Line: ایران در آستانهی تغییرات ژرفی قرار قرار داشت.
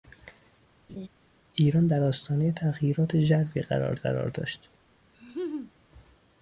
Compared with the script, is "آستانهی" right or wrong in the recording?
right